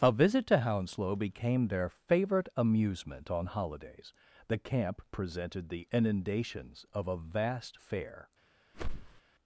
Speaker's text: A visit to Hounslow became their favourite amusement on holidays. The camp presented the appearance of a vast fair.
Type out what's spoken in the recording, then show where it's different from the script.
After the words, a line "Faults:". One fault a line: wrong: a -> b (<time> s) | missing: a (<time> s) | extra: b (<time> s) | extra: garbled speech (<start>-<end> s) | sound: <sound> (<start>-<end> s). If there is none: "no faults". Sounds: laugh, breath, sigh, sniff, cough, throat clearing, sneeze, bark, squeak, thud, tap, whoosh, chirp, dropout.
A visit to Hounslow became their favourite amusement on holidays. The camp presented the inundations of a vast fair.
Faults:
wrong: appearance -> inundations (5.9 s)
sound: whoosh (8.7-9.2 s)